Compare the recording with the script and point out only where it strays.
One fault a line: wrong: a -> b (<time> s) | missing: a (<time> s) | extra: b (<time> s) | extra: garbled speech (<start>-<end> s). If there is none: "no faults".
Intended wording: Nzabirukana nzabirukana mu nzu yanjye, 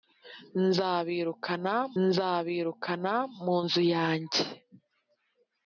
no faults